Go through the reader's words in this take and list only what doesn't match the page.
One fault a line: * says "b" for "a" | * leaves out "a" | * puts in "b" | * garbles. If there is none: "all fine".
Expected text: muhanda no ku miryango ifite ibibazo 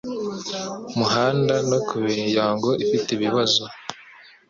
all fine